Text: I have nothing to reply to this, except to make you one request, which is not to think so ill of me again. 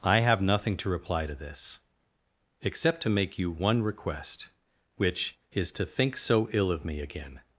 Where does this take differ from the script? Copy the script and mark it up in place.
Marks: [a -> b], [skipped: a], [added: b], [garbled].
I have nothing to reply to this, except to make you one request, which is [skipped: not] to think so ill of me again.